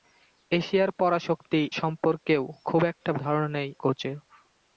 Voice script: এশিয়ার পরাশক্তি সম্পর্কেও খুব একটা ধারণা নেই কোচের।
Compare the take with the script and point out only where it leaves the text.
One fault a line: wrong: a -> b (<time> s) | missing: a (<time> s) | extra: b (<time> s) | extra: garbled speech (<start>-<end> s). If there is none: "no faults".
no faults